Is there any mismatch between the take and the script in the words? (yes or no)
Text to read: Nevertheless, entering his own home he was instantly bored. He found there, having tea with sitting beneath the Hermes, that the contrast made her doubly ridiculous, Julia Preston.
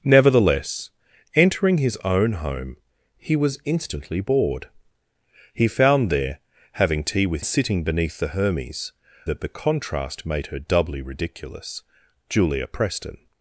no